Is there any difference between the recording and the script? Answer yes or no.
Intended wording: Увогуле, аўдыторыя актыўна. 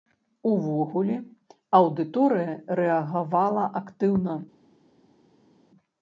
yes